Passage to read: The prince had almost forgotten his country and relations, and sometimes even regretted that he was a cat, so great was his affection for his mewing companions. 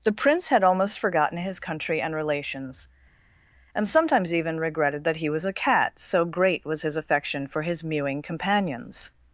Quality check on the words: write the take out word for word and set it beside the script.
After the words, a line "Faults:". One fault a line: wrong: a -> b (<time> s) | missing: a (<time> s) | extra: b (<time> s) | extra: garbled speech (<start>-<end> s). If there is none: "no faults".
The prince had almost forgotten his country and relations, and sometimes even regretted that he was a cat, so great was his affection for his mewing companions.
Faults:
no faults